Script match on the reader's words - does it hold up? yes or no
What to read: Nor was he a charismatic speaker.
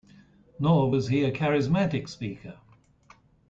yes